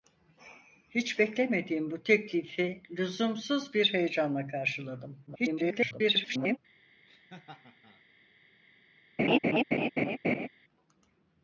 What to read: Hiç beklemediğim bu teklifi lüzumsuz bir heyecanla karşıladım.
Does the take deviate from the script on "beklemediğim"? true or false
false